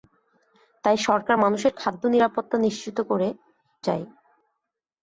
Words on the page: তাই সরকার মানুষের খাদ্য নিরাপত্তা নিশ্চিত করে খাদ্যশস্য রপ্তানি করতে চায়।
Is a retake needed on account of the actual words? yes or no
yes